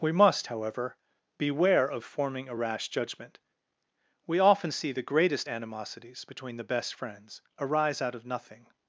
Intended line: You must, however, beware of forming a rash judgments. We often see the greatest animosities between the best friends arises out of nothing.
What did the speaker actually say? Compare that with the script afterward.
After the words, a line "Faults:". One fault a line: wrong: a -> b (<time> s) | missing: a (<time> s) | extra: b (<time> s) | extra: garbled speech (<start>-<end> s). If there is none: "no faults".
We must, however, beware of forming a rash judgment. We often see the greatest animosities between the best friends arise out of nothing.
Faults:
wrong: You -> We (0.0 s)
wrong: judgments -> judgment (2.9 s)
wrong: arises -> arise (7.6 s)